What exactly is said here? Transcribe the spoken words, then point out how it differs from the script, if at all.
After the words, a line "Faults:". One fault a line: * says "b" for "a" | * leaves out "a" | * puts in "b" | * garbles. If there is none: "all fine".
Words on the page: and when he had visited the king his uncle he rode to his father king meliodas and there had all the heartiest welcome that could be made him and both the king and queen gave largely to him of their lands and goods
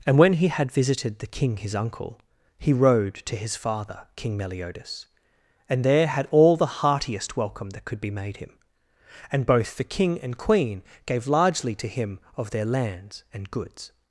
and when he had visited the king his uncle he rode to his father king meliodas and there had all the heartiest welcome that could be made him and both the king and queen gave largely to him of their lands and goods
Faults:
all fine